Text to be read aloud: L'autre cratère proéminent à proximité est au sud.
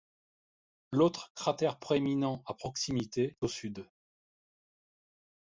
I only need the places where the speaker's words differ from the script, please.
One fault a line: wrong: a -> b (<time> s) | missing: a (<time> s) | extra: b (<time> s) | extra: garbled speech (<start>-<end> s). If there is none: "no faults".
missing: est (3.4 s)